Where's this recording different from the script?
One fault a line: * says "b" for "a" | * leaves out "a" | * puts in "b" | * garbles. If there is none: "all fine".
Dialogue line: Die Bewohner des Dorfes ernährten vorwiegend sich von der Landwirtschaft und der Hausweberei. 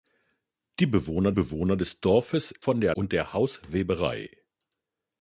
* puts in "Bewohner"
* leaves out "ernährten vorwiegend sich"
* leaves out "Landwirtschaft"